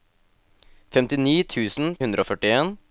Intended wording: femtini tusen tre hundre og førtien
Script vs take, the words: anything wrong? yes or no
yes